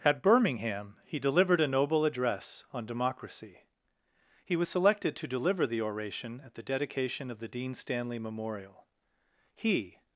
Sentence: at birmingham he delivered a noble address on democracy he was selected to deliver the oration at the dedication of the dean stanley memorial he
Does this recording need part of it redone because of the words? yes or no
no